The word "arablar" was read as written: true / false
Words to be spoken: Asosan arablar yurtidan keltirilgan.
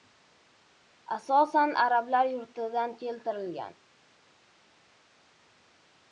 true